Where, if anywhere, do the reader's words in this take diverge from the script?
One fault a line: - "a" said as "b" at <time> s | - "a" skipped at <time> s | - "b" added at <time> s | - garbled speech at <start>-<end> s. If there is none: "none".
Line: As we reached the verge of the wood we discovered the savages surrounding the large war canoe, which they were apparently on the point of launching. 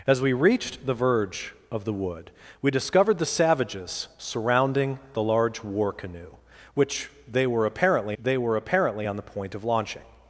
- "they were apparently" added at 8.2 s